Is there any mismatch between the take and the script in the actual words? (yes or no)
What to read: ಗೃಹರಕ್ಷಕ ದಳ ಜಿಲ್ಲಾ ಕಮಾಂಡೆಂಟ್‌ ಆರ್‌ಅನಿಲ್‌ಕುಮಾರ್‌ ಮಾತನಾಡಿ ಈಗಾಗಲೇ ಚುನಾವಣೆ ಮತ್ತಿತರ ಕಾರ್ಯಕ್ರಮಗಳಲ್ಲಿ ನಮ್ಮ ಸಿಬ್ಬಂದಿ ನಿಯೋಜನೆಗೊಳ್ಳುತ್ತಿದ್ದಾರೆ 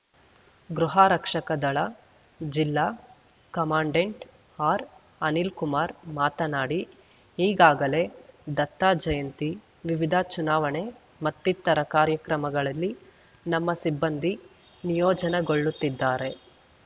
yes